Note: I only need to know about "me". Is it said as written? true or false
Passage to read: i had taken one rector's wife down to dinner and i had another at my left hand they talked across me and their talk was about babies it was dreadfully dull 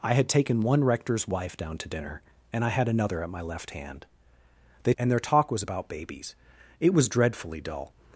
false